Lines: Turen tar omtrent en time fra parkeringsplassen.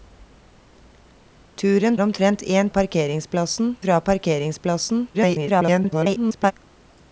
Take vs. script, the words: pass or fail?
fail